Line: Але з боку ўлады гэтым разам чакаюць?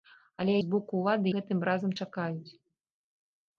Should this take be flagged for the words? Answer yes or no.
no